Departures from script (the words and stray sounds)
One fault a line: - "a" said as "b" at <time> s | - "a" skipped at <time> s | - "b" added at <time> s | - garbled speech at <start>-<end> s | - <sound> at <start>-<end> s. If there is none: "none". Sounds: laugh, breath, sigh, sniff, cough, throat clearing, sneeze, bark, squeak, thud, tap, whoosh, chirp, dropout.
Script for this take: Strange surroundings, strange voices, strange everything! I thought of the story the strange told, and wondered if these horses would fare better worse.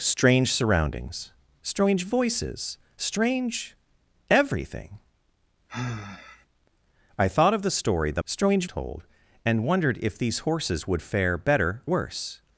- sigh at 5.7-6.5 s